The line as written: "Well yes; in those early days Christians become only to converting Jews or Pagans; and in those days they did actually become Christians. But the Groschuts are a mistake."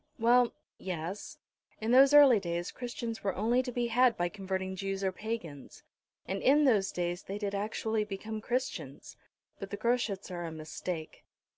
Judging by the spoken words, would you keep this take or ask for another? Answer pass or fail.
fail